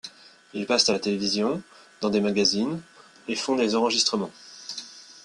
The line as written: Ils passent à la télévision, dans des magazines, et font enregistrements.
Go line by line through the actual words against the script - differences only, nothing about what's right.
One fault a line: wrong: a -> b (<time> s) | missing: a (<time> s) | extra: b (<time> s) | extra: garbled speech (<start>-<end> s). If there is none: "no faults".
extra: des (3.5 s)